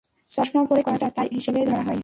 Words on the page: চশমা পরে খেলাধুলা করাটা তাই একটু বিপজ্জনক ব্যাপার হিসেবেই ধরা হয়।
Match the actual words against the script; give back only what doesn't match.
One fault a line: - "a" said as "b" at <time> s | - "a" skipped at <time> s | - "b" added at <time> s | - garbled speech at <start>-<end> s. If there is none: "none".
- "খেলাধুলা" skipped at 0.8 s
- "একটু বিপজ্জনক ব্যাপার" skipped at 1.3 s